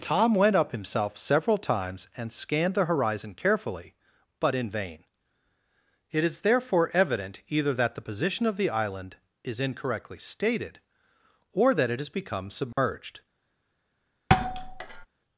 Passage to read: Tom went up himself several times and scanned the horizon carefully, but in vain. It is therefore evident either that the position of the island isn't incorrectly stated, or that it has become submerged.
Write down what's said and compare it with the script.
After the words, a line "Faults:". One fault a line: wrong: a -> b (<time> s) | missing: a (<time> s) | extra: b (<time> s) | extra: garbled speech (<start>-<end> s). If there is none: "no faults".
Tom went up himself several times and scanned the horizon carefully, but in vain. It is therefore evident either that the position of the island is incorrectly stated, or that it has become submerged.
Faults:
wrong: isn't -> is (9.4 s)